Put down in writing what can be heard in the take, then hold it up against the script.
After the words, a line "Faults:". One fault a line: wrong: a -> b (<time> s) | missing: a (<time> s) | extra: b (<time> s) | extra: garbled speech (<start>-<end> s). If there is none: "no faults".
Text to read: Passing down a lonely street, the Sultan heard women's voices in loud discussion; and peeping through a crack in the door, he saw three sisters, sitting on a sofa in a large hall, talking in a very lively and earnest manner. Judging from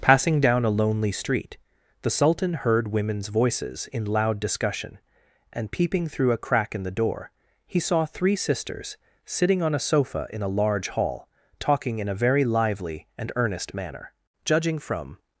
Passing down a lonely street, the Sultan heard women's voices in loud discussion; and peeping through a crack in the door, he saw three sisters, sitting on a sofa in a large hall, talking in a very lively and earnest manner. Judging from
Faults:
no faults